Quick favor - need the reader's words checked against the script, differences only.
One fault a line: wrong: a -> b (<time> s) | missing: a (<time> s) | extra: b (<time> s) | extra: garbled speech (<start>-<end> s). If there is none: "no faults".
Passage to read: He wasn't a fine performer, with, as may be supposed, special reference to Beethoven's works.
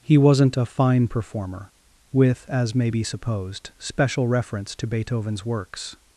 no faults